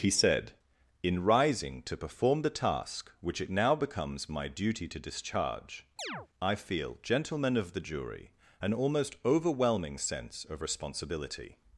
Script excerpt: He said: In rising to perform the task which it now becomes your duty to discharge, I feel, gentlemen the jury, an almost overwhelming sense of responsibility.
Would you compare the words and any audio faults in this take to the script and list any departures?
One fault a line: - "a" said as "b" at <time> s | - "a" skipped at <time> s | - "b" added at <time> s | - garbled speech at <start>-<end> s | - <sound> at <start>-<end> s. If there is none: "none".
- "your" said as "my" at 4.3 s
- chirp at 6.0-6.3 s
- "of" added at 7.6 s